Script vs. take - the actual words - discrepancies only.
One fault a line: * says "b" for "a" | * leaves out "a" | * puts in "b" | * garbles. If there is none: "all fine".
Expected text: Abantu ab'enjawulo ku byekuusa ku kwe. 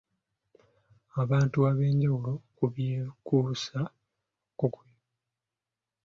all fine